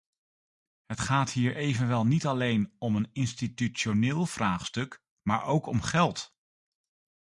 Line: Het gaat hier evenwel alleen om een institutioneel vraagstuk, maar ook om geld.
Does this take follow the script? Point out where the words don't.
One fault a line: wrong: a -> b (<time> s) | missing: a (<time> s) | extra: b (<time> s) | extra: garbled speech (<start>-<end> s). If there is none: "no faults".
extra: niet (2.1 s)